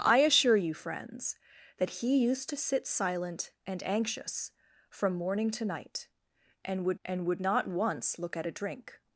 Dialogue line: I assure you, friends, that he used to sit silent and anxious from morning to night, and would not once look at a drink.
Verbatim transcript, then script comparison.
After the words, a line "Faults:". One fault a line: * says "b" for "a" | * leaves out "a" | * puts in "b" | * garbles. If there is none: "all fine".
I assure you, friends, that he used to sit silent and anxious from morning to night, and would and would not once look at a drink.
Faults:
* puts in "and would"